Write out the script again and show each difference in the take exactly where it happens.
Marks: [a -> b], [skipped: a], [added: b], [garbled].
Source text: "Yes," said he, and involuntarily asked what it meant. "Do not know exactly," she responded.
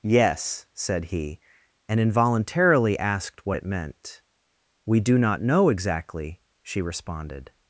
"Yes," said he, and involuntarily asked what it meant. [added: We] "Do not know exactly," she responded.